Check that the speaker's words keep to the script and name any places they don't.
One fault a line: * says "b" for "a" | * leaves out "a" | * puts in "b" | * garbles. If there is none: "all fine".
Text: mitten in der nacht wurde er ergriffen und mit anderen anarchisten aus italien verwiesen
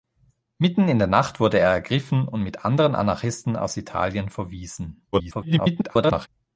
* garbles